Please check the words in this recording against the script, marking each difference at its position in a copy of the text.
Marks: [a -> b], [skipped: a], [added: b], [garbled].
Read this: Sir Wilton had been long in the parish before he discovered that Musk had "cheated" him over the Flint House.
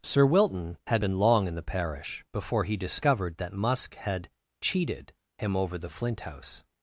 Sir Wilton had been long in the parish before he discovered that Musk had "cheated" him over the Flint House.